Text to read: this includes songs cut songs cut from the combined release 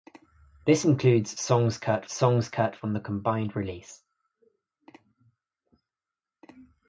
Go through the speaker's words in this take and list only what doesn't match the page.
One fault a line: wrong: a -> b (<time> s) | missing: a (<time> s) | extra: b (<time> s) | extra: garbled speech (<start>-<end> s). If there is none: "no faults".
no faults